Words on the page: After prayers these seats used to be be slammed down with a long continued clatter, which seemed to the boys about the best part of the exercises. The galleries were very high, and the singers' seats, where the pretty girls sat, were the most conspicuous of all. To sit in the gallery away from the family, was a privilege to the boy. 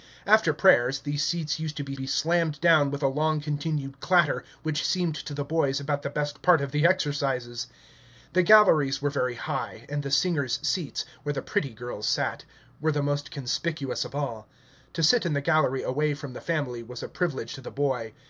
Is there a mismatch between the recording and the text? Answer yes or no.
no